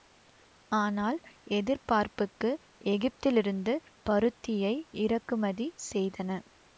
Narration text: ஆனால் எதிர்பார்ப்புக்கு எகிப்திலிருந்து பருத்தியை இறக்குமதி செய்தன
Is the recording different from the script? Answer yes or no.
no